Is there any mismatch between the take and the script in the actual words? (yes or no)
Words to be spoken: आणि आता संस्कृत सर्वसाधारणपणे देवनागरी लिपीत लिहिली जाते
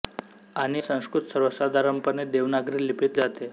yes